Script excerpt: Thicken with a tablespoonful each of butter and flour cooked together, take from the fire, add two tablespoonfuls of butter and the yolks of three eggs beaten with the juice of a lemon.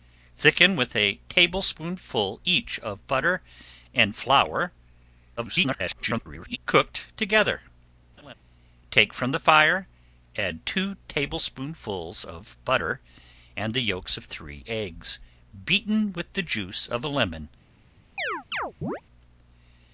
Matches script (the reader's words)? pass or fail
fail